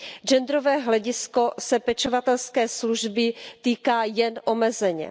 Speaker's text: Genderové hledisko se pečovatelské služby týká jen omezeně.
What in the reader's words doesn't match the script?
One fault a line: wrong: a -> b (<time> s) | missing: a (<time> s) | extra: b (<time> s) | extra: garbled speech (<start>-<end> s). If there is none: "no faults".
no faults